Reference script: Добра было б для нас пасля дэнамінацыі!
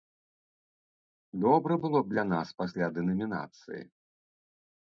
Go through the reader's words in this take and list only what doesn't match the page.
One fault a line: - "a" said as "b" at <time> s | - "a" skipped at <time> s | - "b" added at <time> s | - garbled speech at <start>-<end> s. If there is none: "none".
none